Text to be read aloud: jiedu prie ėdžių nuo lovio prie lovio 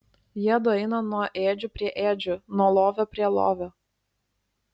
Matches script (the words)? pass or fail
fail